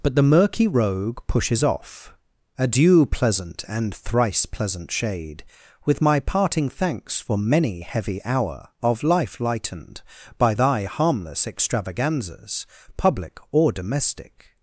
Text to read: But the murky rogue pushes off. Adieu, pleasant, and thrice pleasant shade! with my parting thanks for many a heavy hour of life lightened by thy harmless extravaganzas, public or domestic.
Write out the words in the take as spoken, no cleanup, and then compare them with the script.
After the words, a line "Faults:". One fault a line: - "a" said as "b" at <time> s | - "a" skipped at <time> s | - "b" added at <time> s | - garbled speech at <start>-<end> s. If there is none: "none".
But the murky rogue pushes off. Adieu, pleasant, and thrice pleasant shade! with my parting thanks for many heavy hour of life lightened by thy harmless extravaganzas, public or domestic.
Faults:
- "a" skipped at 7.8 s